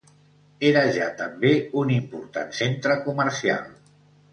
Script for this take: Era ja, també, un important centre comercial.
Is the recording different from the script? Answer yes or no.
no